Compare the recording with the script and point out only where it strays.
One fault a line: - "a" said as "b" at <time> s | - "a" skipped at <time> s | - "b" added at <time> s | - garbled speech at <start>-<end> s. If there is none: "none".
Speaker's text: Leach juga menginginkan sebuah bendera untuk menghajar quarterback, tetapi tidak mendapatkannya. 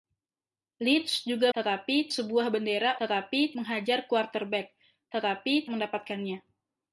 - "menginginkan" said as "tetapi" at 1.5 s
- "untuk" said as "tetapi" at 3.0 s
- "tidak" skipped at 5.7 s